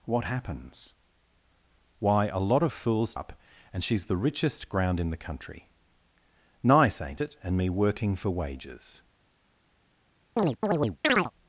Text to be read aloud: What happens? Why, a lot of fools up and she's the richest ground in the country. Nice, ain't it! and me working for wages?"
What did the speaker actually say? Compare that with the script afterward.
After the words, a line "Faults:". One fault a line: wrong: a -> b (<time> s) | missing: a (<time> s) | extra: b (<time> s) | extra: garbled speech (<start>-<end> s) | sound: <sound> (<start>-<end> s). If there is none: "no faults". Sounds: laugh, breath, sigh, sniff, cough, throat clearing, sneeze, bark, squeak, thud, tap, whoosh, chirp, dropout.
What happens? Why, a lot of fools up and she's the richest ground in the country. Nice, ain't it! and me working for wages?"
Faults:
sound: chirp (10.4-11.3 s)